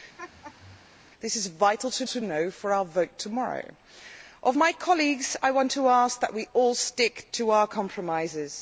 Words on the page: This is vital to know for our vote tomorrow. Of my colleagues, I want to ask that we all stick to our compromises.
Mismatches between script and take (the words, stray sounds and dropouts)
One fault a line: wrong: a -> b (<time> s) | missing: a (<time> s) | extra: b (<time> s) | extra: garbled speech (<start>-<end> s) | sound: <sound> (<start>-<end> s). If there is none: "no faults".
sound: laugh (0.2-0.9 s)
extra: to (2.1 s)